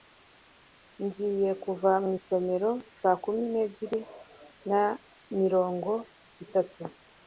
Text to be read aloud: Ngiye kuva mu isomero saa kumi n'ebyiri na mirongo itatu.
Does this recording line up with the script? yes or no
yes